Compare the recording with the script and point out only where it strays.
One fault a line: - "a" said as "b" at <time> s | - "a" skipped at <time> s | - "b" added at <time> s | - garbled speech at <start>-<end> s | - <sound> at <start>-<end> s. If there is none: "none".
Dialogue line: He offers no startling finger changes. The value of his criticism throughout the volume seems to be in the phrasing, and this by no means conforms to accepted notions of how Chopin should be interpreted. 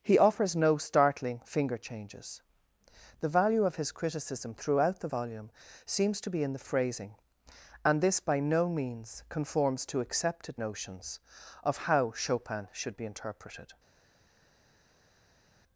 none